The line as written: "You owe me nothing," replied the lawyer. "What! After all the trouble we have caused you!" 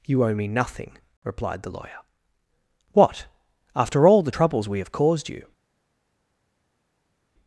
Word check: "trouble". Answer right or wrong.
wrong